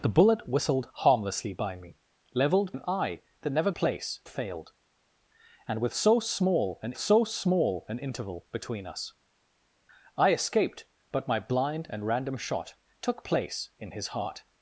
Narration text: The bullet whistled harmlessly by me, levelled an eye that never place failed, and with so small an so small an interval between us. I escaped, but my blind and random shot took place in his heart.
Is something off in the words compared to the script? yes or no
no